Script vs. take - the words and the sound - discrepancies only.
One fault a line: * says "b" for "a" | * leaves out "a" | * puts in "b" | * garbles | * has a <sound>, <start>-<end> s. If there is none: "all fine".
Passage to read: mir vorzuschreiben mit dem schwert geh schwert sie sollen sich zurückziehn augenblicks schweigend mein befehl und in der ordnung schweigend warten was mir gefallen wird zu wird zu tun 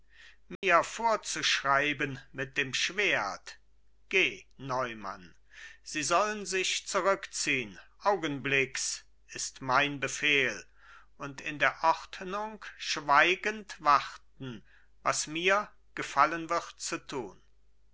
* has a dropout, 0.6-0.6 s
* says "neumann" for "schwert"
* says "ist" for "schweigend"
* leaves out "wird zu"